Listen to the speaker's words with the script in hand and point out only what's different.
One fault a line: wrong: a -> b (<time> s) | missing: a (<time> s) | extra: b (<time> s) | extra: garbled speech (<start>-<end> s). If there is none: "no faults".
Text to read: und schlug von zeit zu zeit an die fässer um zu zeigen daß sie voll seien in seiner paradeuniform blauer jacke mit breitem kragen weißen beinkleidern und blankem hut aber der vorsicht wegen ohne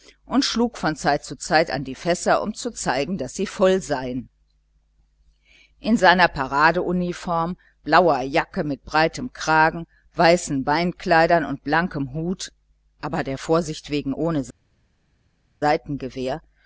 no faults